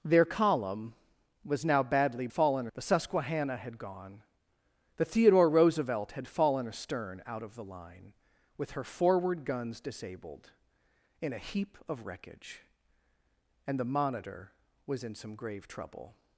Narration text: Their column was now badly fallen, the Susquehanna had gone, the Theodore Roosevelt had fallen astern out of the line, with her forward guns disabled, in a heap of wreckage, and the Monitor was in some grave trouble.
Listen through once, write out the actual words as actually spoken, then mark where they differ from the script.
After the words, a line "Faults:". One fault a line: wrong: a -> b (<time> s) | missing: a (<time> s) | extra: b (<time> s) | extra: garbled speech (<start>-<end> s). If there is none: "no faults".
Their column was now badly fallen, the Susquehanna had gone, the Theodore Roosevelt had fallen astern out of the line, with her forward guns disabled, in a heap of wreckage, and the Monitor was in some grave trouble.
Faults:
no faults